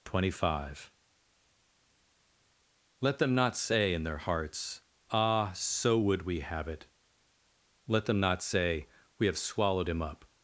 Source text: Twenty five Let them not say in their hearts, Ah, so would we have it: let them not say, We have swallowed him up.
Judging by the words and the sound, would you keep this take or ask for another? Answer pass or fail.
pass